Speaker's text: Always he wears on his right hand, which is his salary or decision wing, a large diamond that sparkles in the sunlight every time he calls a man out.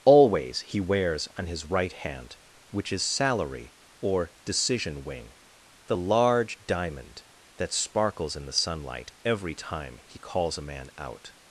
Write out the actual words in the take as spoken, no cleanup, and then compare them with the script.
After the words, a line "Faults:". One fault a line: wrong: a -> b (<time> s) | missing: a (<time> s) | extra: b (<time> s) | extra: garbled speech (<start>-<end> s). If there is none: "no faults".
Always he wears on his right hand, which is salary or decision wing, the large diamond that sparkles in the sunlight every time he calls a man out.
Faults:
missing: his (3.0 s)
wrong: a -> the (5.9 s)